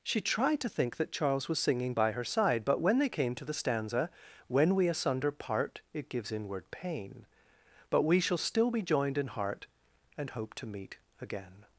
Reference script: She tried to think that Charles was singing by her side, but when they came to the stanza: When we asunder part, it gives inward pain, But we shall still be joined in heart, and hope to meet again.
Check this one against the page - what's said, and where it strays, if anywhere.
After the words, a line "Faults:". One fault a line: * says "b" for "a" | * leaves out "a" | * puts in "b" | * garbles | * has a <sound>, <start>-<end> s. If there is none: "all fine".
She tried to think that Charles was singing by her side, but when they came to the stanza: When we asunder part, it gives inward pain, But we shall still be joined in heart, and hope to meet again.
Faults:
all fine